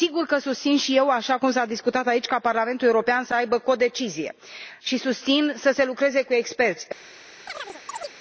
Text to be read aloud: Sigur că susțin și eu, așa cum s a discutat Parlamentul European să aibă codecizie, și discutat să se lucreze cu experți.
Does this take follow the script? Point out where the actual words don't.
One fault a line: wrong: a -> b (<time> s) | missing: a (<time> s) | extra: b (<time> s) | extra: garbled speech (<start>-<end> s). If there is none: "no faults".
extra: aici ca (2.1 s)
wrong: discutat -> susțin (5.0 s)